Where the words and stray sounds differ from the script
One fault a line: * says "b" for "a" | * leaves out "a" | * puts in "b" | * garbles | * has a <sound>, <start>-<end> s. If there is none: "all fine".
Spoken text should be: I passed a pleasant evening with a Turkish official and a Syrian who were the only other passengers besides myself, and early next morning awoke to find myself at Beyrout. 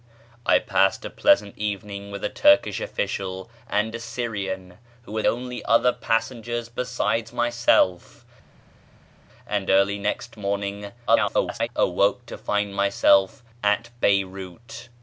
* leaves out "the"
* garbles